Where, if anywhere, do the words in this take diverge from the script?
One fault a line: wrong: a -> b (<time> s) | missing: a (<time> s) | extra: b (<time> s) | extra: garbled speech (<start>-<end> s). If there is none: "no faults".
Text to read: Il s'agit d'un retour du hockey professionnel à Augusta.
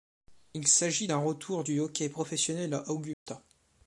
no faults